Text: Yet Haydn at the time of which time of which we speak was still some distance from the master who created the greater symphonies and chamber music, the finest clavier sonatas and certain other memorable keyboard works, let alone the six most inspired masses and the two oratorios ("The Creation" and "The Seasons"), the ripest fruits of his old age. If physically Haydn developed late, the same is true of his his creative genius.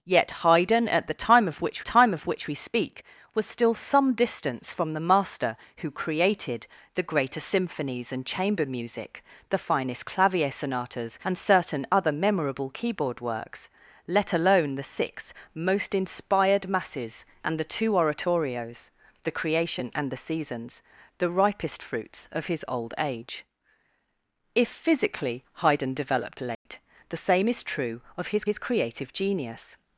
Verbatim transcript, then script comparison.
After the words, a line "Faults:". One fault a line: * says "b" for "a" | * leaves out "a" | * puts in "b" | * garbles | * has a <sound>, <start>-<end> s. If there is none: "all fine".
Yet Haydn at the time of which time of which we speak was still some distance from the master who created the greater symphonies and chamber music, the finest clavier sonatas and certain other memorable keyboard works, let alone the six most inspired masses and the two oratorios ("The Creation" and "The Seasons"), the ripest fruits of his old age. If physically Haydn developed late, the same is true of his his creative genius.
Faults:
* has a dropout, 26.5-26.7 s